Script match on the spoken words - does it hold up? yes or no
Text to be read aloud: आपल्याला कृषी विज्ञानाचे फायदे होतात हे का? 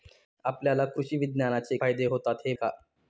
yes